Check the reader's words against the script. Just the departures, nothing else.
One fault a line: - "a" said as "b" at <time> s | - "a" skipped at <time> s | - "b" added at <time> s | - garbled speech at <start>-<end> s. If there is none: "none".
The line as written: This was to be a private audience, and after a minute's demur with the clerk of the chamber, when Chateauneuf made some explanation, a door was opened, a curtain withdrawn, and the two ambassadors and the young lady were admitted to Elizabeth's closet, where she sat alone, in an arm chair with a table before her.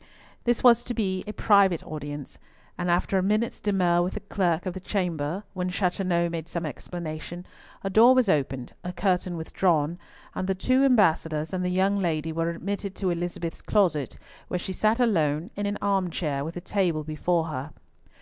none